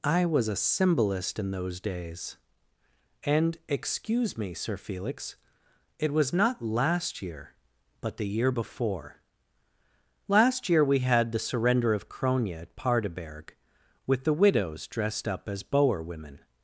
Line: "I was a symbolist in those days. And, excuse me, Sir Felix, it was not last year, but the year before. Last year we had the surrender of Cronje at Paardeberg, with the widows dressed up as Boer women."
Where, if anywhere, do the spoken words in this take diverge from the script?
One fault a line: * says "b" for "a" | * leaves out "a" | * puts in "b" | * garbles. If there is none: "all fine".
all fine